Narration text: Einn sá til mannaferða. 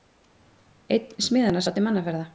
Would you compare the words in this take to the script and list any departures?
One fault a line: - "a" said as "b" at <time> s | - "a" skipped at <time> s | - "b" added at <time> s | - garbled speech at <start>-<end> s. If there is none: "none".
- "smiðanna" added at 1.3 s